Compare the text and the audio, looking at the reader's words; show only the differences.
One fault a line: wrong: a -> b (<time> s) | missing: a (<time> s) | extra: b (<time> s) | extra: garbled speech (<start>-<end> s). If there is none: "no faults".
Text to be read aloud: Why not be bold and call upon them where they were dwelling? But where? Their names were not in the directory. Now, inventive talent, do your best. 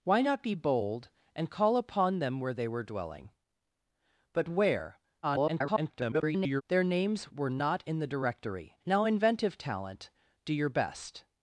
extra: garbled speech (5.2-6.6 s)